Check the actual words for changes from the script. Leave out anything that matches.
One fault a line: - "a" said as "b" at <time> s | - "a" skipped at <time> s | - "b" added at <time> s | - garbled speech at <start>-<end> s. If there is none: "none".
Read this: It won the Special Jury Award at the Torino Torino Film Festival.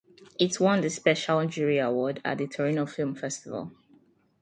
- "Torino" skipped at 2.9 s